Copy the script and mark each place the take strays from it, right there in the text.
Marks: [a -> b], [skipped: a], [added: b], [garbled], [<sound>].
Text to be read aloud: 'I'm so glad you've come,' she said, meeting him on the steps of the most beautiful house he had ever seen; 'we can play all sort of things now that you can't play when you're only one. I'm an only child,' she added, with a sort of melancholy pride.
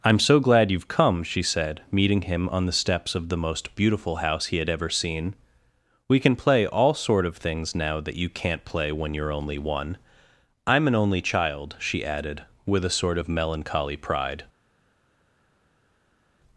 'I'm so glad you've come,' she said, meeting him on the steps of the most beautiful house he had ever seen; 'we can play all sort of things now that you can't play when you're only one. I'm an only child,' she added, with a sort of melancholy pride.